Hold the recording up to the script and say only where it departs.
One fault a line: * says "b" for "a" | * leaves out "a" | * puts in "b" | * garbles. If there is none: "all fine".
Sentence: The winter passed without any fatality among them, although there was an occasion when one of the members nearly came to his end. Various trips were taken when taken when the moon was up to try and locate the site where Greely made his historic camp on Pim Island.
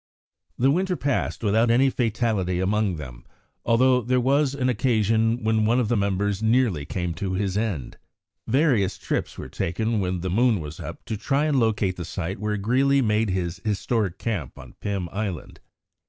* leaves out "taken when"